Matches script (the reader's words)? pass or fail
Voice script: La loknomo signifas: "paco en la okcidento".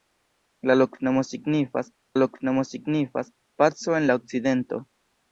fail